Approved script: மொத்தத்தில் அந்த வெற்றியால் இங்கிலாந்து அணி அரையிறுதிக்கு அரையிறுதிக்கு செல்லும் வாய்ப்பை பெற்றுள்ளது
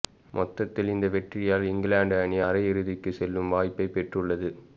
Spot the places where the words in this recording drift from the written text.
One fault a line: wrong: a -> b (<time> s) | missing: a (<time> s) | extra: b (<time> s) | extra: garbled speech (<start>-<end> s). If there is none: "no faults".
wrong: அந்த -> இந்த (0.9 s)
missing: அரையிறுதிக்கு (3.1 s)